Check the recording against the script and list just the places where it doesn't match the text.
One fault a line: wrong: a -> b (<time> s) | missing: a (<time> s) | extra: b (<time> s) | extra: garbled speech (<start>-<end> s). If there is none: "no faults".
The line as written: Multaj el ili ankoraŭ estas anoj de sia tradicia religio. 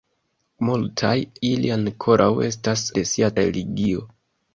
missing: el (1.2 s)
missing: anoj (2.8 s)
missing: tradicia (3.3 s)